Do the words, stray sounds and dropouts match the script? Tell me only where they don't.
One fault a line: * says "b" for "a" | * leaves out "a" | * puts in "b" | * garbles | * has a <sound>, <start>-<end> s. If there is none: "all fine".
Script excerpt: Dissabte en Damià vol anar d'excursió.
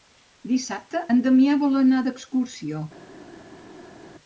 all fine